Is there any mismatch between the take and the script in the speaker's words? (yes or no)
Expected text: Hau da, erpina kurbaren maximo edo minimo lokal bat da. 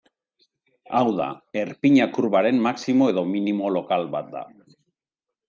no